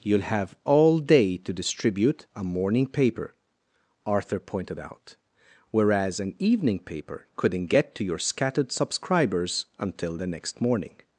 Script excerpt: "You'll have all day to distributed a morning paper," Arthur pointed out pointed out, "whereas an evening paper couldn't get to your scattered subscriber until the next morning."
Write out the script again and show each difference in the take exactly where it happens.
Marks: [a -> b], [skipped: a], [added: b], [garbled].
"You'll have all day to [distributed -> distribute] a morning paper," Arthur pointed out [skipped: pointed out,] "whereas an evening paper couldn't get to your scattered [subscriber -> subscribers] until the next morning."